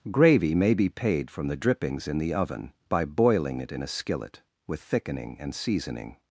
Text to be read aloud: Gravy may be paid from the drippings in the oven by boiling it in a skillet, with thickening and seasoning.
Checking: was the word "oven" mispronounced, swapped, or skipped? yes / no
no